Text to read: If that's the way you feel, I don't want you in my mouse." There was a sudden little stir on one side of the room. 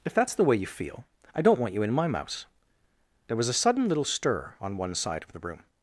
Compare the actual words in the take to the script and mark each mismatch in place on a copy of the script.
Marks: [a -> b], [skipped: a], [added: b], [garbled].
If that's the way you feel, I don't want you in my mouse." There was a sudden little stir on one side of the room.